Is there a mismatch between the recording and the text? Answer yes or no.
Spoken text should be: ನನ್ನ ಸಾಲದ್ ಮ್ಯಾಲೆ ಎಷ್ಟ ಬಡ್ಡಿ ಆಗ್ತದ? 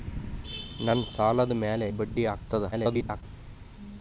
yes